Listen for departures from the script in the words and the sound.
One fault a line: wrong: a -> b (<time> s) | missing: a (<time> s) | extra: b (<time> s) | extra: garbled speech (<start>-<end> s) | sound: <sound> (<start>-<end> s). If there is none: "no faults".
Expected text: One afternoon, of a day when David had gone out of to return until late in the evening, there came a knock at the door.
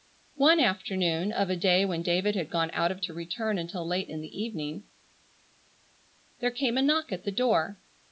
no faults